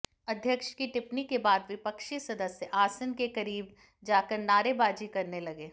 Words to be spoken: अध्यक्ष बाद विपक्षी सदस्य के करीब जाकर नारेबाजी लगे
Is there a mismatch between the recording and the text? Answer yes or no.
yes